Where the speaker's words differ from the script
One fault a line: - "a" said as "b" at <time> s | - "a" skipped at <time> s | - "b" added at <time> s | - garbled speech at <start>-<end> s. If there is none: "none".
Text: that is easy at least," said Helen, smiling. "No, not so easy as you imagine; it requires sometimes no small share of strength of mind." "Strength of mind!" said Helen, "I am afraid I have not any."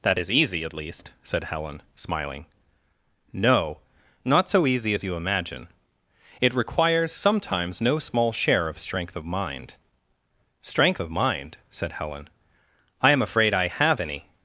- "not" skipped at 14.0 s